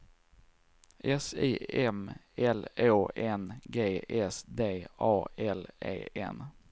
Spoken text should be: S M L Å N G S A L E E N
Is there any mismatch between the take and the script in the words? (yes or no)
yes